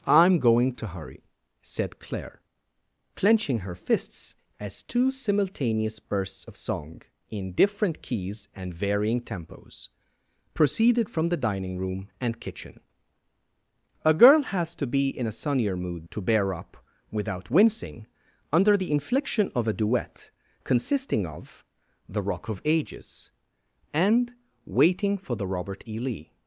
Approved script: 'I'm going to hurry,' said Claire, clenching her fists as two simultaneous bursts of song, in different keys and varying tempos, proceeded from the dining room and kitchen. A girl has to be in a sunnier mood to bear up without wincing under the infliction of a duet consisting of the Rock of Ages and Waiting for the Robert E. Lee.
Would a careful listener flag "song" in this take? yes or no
no